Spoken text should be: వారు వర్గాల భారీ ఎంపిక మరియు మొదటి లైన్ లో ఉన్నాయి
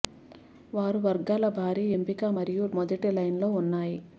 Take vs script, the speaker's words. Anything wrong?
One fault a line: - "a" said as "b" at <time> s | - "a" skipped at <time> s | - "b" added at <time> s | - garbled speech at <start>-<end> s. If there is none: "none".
none